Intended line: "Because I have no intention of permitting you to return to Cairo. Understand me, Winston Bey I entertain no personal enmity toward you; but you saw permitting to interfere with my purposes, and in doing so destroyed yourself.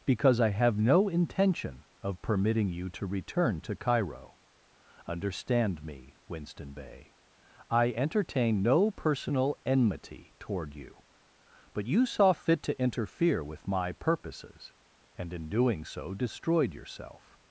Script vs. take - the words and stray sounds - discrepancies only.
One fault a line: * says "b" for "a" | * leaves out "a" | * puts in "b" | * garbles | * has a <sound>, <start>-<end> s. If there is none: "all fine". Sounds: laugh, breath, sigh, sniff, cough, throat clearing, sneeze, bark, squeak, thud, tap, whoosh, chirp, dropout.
* says "fit" for "permitting"